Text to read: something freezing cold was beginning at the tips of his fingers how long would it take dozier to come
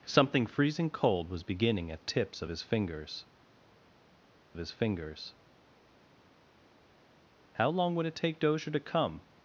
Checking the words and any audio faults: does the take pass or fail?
fail